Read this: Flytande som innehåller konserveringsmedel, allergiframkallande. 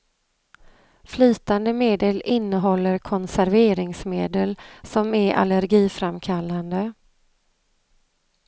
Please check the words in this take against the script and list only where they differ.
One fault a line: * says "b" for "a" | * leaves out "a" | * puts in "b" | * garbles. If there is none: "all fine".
* says "medel" for "som"
* puts in "som är"